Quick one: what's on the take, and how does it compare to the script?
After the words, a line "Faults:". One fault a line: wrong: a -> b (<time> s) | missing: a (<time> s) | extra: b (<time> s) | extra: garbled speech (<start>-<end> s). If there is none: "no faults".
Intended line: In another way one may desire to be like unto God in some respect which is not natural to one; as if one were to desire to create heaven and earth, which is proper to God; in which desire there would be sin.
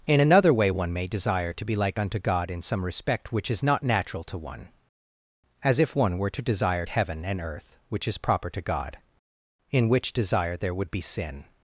In another way one may desire to be like unto God in some respect which is not natural to one; as if one were to desire heaven and earth, which is proper to God; in which desire there would be sin.
Faults:
missing: to create (6.8 s)